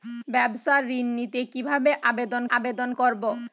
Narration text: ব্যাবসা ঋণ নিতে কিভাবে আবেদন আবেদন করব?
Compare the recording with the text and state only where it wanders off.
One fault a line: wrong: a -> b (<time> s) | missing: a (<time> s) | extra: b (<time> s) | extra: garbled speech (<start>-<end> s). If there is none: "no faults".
no faults